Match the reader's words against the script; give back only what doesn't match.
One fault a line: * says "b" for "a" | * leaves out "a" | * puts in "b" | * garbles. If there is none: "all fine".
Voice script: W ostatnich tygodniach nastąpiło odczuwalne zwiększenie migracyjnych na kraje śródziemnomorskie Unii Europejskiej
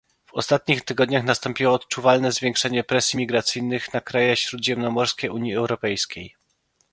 * puts in "presji"